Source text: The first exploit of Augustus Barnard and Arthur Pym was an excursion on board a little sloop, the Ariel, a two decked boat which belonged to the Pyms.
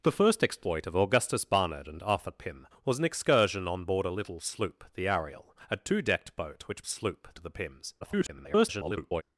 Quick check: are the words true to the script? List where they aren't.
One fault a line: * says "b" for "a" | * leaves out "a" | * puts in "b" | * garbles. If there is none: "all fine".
* says "sloop" for "belonged"
* garbles